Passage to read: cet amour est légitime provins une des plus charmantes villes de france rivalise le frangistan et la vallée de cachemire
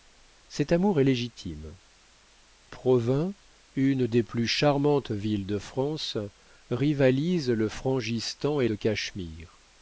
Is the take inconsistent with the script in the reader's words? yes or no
yes